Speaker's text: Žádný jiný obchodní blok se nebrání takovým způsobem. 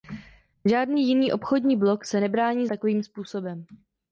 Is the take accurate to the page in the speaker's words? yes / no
yes